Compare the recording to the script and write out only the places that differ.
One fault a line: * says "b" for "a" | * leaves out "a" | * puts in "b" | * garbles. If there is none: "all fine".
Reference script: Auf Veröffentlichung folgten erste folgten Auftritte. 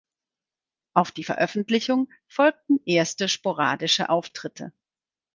* puts in "die"
* says "sporadische" for "folgten"